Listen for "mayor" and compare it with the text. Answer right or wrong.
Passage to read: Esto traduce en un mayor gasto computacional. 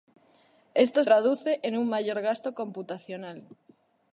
right